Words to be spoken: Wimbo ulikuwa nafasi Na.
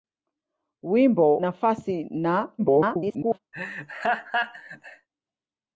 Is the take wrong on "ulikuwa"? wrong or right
wrong